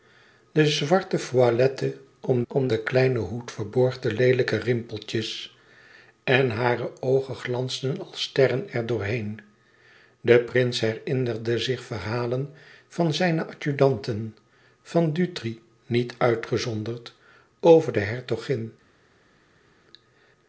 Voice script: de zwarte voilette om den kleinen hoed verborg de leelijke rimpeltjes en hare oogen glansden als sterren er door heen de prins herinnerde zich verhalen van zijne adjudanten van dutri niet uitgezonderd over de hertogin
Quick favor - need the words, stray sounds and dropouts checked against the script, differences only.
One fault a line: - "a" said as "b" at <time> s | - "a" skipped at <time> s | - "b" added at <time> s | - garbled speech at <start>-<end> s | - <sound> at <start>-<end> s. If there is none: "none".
- "om" added at 2.5 s